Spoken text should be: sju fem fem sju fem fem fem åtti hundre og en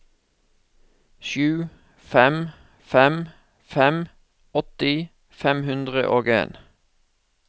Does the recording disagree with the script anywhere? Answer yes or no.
yes